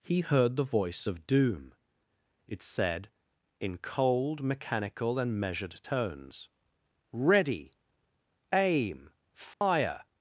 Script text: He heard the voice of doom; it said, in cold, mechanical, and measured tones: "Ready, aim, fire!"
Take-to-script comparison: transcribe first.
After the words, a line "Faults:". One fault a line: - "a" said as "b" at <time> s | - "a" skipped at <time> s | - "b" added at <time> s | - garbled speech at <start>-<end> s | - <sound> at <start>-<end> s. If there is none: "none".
He heard the voice of doom; it said, in cold, mechanical, and measured tones: "Ready, aim, fire!"
Faults:
- dropout at 9.5-9.6 s